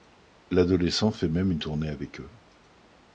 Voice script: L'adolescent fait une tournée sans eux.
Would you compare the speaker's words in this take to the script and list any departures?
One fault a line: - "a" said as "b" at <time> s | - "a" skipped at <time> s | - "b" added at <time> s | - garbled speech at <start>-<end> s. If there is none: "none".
- "même" added at 1.3 s
- "sans" said as "avec" at 1.9 s